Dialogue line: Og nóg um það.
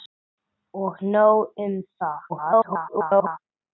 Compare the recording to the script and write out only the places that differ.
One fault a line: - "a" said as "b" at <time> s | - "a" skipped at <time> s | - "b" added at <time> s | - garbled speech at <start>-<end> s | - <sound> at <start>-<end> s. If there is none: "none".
- garbled speech at 2.3-3.4 s